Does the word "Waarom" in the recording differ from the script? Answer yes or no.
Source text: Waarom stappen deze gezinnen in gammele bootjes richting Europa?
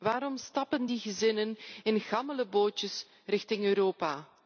no